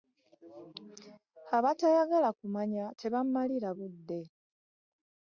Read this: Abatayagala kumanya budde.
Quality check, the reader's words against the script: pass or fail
fail